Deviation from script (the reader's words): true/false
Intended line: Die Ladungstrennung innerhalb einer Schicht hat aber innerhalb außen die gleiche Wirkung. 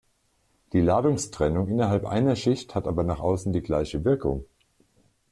true